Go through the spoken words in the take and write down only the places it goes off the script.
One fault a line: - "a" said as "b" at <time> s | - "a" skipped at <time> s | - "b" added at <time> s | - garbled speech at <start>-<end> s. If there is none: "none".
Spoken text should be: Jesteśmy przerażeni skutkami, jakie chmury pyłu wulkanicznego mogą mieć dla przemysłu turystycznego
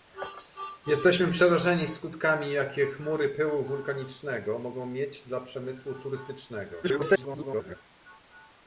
- garbled speech at 6.8-7.8 s